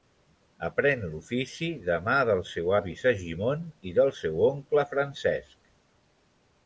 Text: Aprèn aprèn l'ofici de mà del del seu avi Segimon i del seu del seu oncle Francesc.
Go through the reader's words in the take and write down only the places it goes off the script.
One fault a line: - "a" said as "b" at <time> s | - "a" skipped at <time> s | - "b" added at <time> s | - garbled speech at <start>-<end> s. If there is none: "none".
- "aprèn" skipped at 1.0 s
- "del" skipped at 2.4 s
- "del seu" skipped at 4.4 s